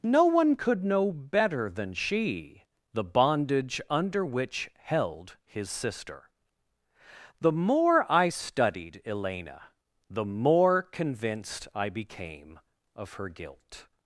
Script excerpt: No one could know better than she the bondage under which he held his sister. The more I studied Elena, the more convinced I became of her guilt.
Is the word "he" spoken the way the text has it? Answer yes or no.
no